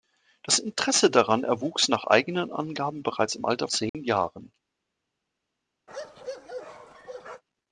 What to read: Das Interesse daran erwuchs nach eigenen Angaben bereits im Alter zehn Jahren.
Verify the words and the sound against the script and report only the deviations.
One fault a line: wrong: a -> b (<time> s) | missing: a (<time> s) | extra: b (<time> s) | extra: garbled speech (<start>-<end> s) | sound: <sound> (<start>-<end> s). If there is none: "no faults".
sound: dropout (3.9-3.9 s)
sound: bark (5.9-7.4 s)